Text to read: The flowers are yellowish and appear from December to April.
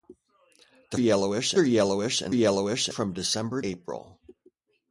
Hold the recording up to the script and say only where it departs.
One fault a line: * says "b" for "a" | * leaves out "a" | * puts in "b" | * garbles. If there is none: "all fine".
* says "yellowish" for "flowers"
* says "yellowish" for "appear"
* leaves out "to"